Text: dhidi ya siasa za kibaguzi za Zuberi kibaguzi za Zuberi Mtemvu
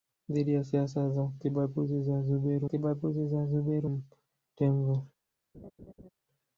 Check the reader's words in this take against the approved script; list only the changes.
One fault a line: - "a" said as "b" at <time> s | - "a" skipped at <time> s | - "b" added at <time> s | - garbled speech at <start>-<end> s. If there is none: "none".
none